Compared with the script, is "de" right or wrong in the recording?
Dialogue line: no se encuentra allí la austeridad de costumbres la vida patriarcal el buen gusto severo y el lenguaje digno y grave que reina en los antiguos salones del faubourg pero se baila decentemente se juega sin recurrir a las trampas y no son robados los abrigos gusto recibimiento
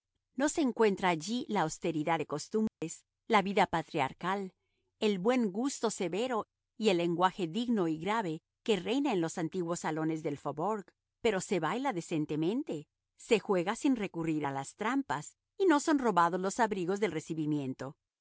right